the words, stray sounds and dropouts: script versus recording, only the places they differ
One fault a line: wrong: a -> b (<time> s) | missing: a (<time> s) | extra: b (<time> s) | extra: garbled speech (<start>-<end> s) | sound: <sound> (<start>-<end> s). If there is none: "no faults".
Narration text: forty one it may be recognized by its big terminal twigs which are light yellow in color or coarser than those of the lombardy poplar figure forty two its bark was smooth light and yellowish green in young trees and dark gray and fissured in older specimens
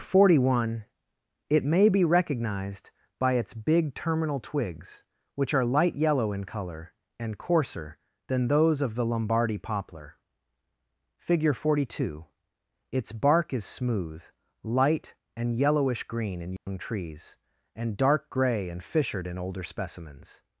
wrong: or -> and (7.2 s)
wrong: was -> is (13.5 s)
sound: dropout (16.6-16.7 s)